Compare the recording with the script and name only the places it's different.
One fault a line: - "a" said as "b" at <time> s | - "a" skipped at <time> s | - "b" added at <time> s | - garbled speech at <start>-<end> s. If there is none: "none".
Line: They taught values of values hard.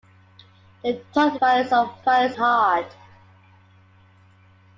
none